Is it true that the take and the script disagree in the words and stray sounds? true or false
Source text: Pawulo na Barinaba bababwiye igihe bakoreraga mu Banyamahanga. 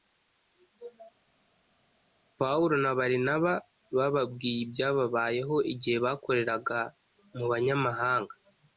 true